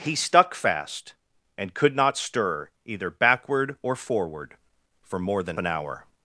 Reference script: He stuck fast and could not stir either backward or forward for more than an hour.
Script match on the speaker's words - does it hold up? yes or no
yes